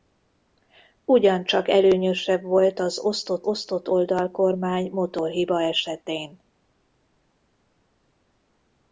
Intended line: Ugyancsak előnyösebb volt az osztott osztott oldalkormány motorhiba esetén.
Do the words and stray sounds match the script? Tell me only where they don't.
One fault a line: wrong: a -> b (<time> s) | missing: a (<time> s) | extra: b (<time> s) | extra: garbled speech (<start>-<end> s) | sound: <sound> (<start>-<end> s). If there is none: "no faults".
no faults